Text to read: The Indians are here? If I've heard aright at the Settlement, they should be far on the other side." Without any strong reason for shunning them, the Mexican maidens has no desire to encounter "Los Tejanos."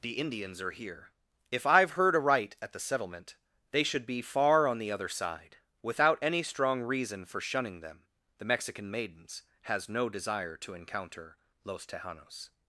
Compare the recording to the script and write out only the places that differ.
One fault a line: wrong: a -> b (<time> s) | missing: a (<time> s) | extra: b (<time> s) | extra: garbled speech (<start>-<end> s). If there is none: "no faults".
no faults